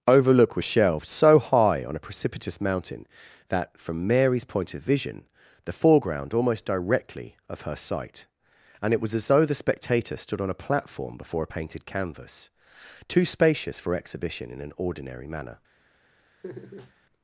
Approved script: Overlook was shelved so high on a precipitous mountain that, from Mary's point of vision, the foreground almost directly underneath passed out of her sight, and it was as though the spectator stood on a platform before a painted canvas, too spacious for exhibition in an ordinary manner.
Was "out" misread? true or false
true